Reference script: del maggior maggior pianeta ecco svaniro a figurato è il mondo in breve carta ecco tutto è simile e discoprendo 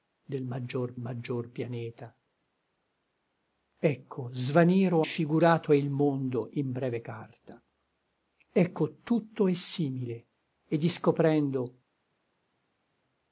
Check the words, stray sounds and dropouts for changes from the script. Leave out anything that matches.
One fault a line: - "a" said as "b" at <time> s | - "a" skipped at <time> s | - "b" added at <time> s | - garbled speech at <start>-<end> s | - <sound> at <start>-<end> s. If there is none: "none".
none